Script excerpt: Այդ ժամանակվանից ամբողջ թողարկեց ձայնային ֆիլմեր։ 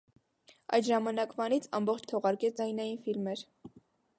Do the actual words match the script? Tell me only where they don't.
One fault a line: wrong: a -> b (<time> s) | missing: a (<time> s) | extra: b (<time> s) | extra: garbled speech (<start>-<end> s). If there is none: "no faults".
no faults